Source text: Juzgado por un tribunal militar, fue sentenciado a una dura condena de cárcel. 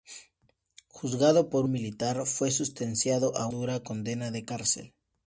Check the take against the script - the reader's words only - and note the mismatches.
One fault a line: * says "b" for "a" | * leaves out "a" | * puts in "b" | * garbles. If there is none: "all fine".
* leaves out "un tribunal"
* leaves out "una"